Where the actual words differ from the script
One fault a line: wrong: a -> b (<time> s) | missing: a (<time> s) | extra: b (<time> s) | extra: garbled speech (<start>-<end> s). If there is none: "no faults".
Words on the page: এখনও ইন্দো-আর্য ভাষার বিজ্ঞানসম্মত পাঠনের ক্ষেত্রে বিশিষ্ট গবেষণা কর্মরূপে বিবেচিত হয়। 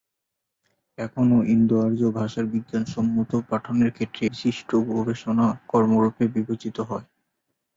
no faults